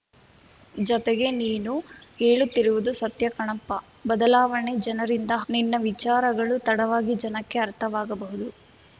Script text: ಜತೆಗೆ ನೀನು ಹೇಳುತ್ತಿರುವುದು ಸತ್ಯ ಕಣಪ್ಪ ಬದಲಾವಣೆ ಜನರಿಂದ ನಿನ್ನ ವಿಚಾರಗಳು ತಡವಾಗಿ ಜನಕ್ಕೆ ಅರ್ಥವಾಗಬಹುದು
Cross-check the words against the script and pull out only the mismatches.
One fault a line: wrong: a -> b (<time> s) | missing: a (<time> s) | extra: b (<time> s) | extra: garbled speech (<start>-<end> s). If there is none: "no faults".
no faults